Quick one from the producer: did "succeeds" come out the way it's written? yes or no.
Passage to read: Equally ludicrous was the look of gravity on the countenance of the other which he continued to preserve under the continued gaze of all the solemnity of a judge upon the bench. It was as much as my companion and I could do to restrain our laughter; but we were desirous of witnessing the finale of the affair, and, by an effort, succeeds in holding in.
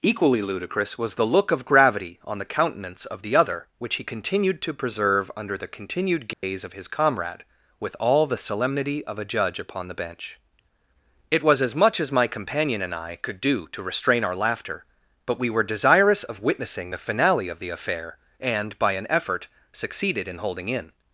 no